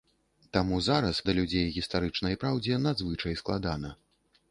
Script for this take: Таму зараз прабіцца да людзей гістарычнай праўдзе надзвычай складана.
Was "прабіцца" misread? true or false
true